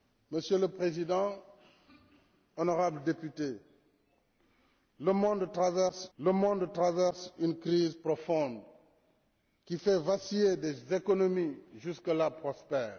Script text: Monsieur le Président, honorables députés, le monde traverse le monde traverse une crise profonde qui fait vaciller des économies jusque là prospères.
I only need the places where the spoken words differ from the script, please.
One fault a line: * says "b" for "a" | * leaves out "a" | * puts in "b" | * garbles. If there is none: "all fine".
all fine